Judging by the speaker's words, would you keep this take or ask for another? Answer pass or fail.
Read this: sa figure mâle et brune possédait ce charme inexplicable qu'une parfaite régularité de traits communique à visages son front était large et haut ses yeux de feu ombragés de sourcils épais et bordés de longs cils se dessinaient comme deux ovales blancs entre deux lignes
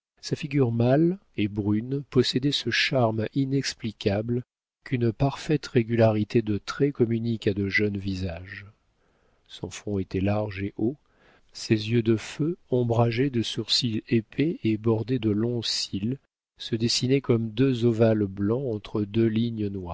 fail